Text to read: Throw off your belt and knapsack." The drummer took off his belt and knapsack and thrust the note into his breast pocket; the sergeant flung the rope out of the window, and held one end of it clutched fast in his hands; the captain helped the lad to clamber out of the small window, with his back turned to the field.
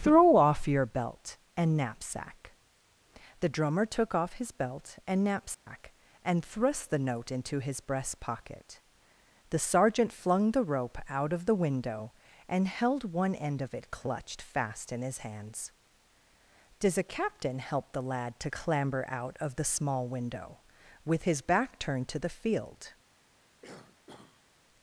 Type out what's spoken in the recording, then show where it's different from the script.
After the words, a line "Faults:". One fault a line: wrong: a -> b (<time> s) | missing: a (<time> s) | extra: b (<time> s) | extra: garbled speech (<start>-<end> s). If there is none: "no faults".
Throw off your belt and knapsack." The drummer took off his belt and knapsack and thrust the note into his breast pocket; the sergeant flung the rope out of the window, and held one end of it clutched fast in his hands; does a captain help the lad to clamber out of the small window, with his back turned to the field.
Faults:
wrong: the -> does a (16.8 s)
wrong: helped -> help (17.6 s)